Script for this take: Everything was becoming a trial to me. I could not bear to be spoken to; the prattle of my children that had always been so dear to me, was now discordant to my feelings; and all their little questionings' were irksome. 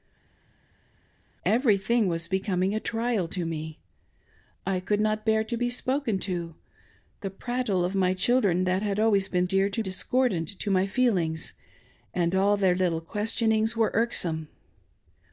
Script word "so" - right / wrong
wrong